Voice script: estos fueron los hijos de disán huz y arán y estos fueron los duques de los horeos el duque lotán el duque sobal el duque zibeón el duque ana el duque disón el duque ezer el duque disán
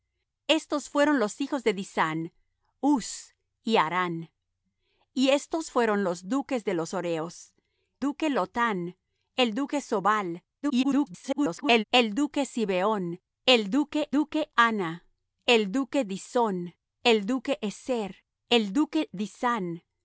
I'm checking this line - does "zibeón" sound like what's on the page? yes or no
yes